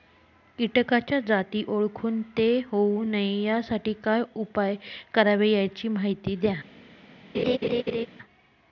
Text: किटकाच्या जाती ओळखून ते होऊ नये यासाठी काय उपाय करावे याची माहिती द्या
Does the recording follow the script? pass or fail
pass